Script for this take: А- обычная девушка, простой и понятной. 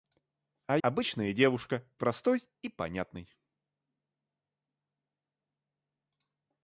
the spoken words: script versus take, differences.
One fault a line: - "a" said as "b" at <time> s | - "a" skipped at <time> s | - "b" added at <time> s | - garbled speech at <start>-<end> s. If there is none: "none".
none